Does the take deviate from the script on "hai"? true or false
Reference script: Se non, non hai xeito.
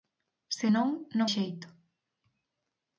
true